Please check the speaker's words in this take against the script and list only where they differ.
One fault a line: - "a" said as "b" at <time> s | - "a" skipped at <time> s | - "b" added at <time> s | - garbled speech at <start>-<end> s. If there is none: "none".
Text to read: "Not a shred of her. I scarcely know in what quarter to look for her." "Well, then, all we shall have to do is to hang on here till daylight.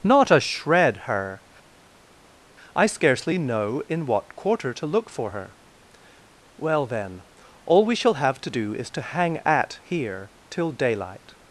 - "of" skipped at 1.0 s
- "on" said as "at" at 9.4 s